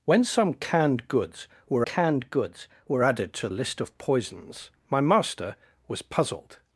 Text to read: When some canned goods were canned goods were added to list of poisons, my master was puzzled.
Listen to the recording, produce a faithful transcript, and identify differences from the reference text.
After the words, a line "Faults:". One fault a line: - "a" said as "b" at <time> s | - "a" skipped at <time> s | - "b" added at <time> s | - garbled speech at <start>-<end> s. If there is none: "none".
When some canned goods were canned goods were added to list of poisons, my master was puzzled.
Faults:
none